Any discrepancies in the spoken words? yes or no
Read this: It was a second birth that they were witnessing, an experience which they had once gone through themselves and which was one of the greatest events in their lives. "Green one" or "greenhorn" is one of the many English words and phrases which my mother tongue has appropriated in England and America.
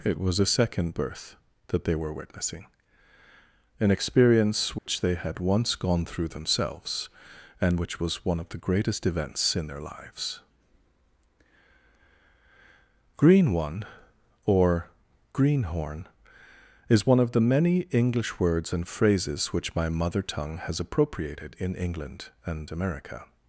no